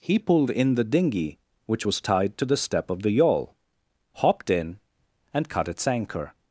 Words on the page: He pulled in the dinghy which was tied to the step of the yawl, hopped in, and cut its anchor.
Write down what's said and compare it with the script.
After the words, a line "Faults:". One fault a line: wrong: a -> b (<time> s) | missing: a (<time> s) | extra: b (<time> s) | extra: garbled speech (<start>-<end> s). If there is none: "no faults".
He pulled in the dinghy which was tied to the step of the yawl, hopped in, and cut its anchor.
Faults:
no faults